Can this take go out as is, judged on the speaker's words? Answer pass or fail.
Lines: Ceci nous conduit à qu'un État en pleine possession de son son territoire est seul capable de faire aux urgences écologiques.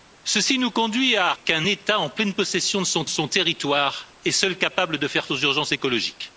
pass